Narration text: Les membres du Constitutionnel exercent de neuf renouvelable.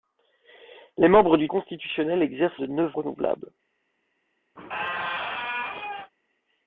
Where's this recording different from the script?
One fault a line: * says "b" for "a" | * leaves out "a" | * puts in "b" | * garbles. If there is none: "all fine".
all fine